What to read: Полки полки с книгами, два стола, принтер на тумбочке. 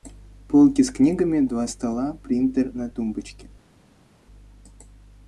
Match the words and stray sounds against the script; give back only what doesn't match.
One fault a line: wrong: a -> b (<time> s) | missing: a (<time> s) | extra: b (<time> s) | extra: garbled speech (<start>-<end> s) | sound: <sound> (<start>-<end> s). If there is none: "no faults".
missing: полки (0.8 s)